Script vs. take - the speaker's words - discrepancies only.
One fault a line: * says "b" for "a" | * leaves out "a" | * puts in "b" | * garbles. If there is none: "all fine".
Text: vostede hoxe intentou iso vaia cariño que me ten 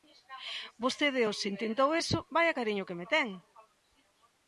all fine